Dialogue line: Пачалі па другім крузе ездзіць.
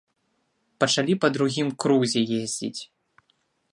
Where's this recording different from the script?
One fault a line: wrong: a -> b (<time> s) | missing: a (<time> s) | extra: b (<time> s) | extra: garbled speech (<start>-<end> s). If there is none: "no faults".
no faults